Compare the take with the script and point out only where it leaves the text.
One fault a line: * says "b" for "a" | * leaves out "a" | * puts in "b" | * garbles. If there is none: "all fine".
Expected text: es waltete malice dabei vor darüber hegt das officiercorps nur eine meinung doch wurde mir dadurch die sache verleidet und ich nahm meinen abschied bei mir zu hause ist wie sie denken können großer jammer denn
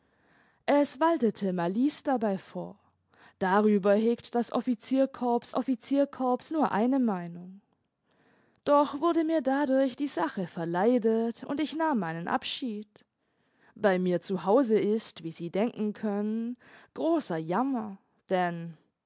* puts in "officiercorps"